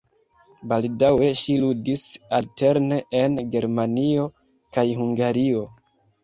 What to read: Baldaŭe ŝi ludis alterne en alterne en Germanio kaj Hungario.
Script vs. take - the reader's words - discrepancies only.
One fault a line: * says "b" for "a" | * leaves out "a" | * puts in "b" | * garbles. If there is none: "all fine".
* leaves out "alterne en"